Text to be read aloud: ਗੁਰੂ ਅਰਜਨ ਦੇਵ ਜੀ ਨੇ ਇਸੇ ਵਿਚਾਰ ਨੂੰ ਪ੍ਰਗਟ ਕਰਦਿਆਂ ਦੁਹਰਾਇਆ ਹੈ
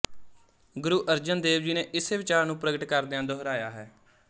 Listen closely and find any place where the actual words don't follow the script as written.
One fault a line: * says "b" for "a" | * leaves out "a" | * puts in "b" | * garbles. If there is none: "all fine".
all fine